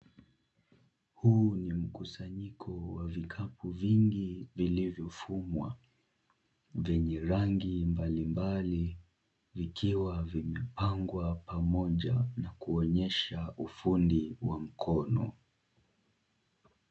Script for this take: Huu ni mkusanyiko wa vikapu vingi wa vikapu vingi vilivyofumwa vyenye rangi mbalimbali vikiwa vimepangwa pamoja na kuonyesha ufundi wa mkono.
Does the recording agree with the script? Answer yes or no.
no